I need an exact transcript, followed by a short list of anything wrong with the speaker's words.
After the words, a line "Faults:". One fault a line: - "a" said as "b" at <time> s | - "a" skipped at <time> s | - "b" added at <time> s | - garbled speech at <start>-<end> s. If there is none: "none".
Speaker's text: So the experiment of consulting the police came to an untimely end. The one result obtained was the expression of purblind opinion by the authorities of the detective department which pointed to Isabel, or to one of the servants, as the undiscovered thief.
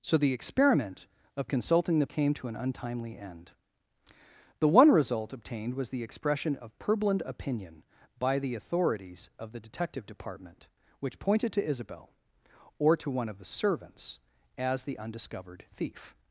So the experiment of consulting the came to an untimely end. The one result obtained was the expression of purblind opinion by the authorities of the detective department which pointed to Isabel, or to one of the servants, as the undiscovered thief.
Faults:
- "police" skipped at 2.1 s